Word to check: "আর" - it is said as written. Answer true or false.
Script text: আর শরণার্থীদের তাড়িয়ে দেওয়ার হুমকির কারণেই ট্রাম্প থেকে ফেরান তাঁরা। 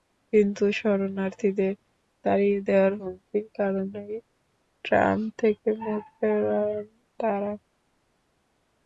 false